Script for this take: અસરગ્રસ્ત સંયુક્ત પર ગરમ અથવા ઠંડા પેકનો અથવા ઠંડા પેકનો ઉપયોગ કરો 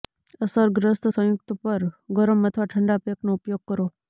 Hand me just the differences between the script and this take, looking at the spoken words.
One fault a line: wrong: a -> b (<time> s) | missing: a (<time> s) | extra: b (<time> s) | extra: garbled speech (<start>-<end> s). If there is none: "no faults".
missing: અથવા ઠંડા પેકનો (3.3 s)